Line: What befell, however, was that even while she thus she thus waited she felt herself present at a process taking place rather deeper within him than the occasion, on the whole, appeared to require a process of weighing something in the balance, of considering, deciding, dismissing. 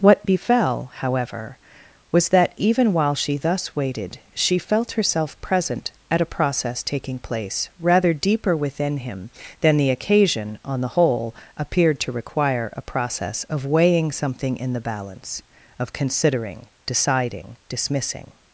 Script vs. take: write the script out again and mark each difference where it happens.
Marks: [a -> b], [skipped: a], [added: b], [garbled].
What befell, however, was that even while she thus [skipped: she thus] waited she felt herself present at a process taking place rather deeper within him than the occasion, on the whole, appeared to require a process of weighing something in the balance, of considering, deciding, dismissing.